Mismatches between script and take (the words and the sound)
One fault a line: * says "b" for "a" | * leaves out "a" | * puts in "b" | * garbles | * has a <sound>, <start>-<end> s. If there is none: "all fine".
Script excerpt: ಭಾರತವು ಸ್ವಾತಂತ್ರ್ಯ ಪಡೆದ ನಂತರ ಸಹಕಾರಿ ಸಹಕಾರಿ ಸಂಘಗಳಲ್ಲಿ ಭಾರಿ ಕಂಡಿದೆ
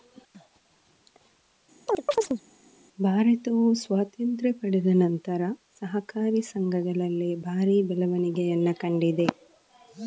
* has a chirp, 1.9-2.4 s
* leaves out "ಸಹಕಾರಿ"
* puts in "ಬೆಳವಣಿಗೆಯನ್ನ"